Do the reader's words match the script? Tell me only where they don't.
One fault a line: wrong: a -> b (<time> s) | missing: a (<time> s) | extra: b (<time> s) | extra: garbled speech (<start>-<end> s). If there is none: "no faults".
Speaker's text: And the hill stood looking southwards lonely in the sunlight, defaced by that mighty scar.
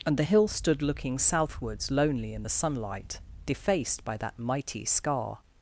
no faults